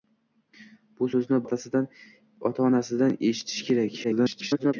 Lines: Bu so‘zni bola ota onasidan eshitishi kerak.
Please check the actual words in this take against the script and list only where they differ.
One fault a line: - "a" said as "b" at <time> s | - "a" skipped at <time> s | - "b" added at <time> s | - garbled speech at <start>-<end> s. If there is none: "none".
- "bola" skipped at 1.4 s
- garbled speech at 4.0-4.7 s